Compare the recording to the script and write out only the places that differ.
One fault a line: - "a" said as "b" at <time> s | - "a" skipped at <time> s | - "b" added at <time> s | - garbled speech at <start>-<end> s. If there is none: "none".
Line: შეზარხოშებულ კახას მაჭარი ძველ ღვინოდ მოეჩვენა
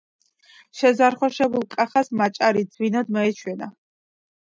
- "ძველ" skipped at 2.6 s